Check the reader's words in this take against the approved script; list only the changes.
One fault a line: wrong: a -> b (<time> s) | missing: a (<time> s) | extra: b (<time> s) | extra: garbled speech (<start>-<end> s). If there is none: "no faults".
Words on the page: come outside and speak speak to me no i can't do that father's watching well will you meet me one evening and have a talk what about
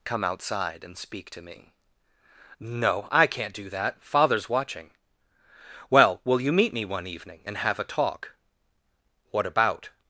missing: speak (1.3 s)